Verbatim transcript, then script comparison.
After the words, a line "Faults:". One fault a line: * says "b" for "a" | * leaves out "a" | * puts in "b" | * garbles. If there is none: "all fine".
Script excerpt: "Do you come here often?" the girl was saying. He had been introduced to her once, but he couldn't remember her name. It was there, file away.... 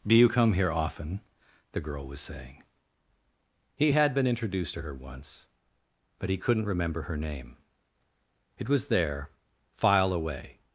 "Do you come here often?" the girl was saying. He had been introduced to her once, but he couldn't remember her name. It was there, file away....
Faults:
all fine